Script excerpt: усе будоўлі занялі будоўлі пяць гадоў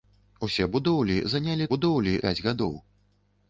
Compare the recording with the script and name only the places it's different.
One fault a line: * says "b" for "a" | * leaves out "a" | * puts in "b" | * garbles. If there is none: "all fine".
all fine